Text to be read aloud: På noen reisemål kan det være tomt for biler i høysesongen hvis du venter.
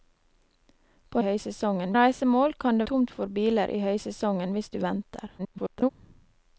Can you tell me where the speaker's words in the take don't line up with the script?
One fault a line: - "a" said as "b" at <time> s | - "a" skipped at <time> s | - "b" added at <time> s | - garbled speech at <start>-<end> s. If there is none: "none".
- "noen" said as "høysesongen" at 1.2 s
- "være" skipped at 2.9 s
- garbled speech at 5.4-5.9 s